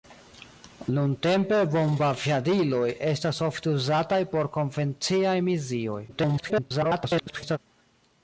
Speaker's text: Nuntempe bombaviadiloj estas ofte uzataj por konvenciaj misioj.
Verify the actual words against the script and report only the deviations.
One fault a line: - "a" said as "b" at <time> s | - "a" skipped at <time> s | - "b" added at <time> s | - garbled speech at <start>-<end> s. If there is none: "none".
- garbled speech at 6.1-7.6 s